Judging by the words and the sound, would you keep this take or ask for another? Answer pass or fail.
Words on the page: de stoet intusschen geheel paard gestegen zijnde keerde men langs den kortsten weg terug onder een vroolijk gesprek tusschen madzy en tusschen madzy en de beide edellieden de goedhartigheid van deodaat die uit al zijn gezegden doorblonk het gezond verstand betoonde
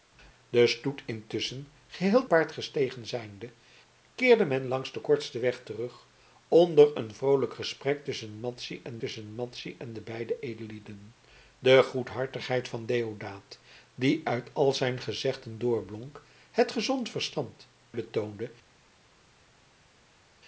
pass